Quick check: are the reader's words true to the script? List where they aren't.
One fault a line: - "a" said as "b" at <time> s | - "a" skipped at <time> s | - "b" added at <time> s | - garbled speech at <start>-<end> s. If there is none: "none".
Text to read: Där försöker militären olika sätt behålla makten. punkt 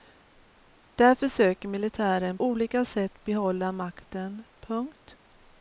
none